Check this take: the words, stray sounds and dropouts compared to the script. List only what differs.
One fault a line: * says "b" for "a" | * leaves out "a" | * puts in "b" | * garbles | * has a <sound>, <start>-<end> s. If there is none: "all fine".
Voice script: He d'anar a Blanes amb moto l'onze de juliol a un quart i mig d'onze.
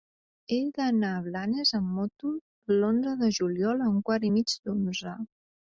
all fine